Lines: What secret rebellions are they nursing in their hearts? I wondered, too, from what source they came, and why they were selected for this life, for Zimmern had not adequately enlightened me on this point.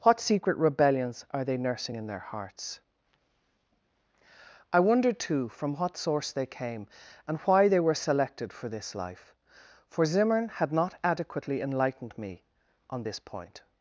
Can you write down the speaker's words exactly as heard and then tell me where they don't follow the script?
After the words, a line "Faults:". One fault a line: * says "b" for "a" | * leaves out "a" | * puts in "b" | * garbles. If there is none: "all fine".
What secret rebellions are they nursing in their hearts? I wondered, too, from what source they came, and why they were selected for this life, for Zimmern had not adequately enlightened me on this point.
Faults:
all fine